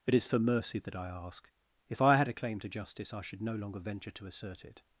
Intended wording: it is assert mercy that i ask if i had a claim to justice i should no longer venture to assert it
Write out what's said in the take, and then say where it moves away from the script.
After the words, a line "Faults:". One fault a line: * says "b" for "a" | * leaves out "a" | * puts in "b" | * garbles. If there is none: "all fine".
it is for mercy that i ask if i had a claim to justice i should no longer venture to assert it
Faults:
* says "for" for "assert"